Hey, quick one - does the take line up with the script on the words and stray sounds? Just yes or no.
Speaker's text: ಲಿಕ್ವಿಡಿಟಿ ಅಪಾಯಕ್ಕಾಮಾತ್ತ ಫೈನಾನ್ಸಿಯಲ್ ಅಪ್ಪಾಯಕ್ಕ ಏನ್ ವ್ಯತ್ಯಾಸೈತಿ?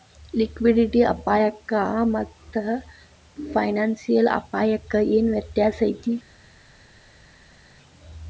yes